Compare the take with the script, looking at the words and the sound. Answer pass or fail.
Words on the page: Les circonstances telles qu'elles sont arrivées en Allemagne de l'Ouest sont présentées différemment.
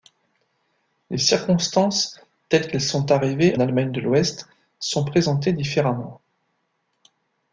fail